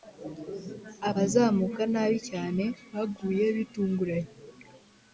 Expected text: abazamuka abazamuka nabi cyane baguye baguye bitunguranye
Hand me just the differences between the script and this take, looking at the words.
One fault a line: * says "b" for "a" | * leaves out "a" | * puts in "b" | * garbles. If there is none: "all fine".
* leaves out "abazamuka"
* leaves out "baguye"